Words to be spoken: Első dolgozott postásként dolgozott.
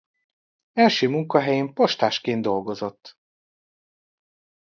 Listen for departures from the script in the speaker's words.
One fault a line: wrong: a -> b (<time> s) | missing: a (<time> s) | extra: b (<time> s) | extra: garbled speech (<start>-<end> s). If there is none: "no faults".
wrong: dolgozott -> munkahelyén (1.1 s)